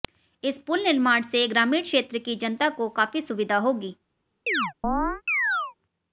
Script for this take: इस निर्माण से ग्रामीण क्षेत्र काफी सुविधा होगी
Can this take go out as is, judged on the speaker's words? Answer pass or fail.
fail